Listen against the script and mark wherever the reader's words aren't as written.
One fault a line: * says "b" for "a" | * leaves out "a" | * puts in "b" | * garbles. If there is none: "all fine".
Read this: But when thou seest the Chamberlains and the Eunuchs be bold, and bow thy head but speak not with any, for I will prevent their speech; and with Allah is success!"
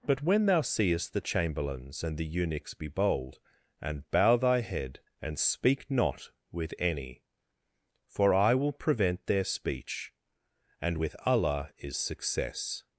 * says "and" for "but"